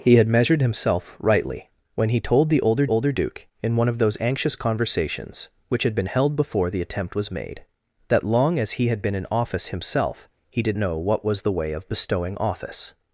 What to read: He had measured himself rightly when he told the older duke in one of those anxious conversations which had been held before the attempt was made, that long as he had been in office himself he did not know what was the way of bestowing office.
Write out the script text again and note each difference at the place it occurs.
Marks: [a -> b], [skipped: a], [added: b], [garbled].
He had measured himself rightly when he told the older [added: older] duke in one of those anxious conversations which had been held before the attempt was made, that long as he had been in office himself he did [skipped: not] know what was the way of bestowing office.